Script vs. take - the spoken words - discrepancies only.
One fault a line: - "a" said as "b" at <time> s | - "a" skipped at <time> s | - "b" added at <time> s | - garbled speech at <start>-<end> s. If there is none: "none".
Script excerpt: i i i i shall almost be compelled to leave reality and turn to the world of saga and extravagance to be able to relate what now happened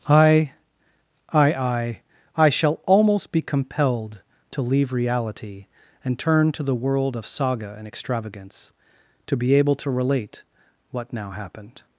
none